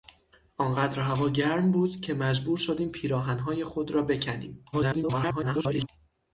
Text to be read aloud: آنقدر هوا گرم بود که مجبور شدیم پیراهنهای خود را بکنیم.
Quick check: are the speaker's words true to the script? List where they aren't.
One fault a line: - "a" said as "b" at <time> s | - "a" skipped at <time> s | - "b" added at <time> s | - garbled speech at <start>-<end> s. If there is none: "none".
- garbled speech at 4.7-5.9 s